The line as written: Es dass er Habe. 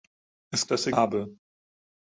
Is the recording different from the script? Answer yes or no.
no